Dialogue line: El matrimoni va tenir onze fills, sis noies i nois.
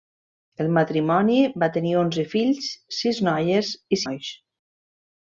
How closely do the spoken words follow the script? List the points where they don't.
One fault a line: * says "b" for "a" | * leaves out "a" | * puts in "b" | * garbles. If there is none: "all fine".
all fine